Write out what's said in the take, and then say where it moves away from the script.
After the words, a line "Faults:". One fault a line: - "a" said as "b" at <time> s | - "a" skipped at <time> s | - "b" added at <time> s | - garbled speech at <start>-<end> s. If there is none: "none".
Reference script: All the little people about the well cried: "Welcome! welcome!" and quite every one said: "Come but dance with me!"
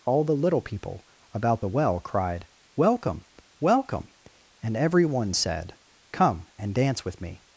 All the little people about the well cried: "Welcome! welcome!" and every one said: "Come and dance with me!"
Faults:
- "quite" skipped at 4.8 s
- "but" said as "and" at 6.6 s